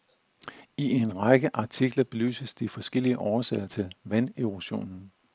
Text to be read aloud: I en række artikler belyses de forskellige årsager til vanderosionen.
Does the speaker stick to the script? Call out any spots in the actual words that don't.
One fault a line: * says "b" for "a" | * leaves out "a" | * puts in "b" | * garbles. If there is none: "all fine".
all fine